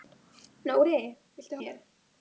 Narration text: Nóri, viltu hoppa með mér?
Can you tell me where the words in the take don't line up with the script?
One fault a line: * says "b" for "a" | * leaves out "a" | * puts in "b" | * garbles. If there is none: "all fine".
* leaves out "hoppa með"